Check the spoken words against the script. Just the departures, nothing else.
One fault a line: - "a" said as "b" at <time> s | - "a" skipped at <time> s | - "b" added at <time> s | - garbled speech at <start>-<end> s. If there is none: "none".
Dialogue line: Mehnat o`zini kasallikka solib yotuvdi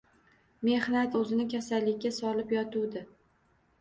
none